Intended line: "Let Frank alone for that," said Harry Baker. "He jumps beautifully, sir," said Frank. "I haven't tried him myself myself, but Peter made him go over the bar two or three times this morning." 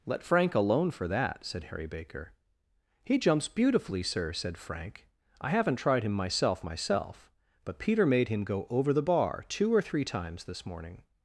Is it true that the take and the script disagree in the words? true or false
false